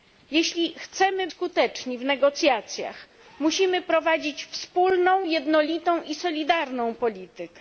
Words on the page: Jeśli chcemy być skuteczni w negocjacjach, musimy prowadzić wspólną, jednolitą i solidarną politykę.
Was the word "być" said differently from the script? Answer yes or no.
yes